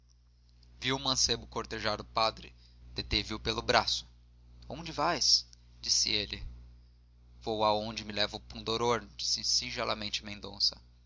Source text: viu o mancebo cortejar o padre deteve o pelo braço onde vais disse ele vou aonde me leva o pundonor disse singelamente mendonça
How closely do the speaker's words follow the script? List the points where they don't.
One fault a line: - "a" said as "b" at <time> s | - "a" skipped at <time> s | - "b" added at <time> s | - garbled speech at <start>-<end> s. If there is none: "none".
none